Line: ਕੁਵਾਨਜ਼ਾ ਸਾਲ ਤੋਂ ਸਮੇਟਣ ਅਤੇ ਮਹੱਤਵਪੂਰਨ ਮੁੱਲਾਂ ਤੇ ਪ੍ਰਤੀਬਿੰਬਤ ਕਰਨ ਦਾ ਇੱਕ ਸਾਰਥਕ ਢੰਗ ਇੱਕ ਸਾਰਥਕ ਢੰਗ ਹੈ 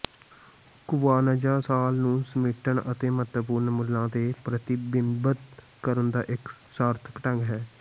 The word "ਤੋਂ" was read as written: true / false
false